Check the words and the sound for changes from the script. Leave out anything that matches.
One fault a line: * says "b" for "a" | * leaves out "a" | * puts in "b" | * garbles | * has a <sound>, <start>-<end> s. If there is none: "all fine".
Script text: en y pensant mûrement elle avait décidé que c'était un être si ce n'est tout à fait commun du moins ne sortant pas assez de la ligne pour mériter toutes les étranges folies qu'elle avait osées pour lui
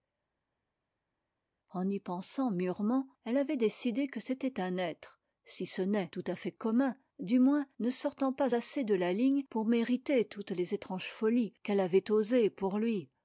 all fine